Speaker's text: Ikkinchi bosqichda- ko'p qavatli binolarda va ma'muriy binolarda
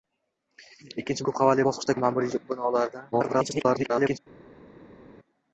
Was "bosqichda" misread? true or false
true